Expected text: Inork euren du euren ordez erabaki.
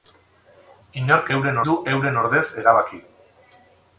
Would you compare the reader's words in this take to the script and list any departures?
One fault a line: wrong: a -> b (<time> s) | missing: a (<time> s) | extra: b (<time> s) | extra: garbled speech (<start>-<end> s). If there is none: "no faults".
no faults